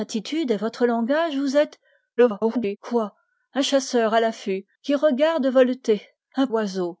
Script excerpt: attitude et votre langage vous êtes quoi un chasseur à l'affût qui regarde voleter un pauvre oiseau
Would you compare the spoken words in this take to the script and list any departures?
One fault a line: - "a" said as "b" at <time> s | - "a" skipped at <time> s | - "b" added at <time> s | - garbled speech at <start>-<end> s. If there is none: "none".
- garbled speech at 2.2-2.8 s
- "pauvre" skipped at 6.5 s